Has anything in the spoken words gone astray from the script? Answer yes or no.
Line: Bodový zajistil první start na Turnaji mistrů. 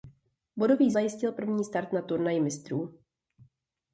no